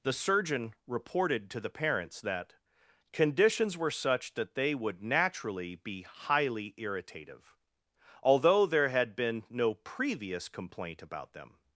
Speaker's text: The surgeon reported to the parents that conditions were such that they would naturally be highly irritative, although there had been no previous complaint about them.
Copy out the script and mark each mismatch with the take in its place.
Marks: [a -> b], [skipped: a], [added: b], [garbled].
The surgeon reported to the parents that conditions were such that they would naturally be highly irritative, although there had been no previous complaint about them.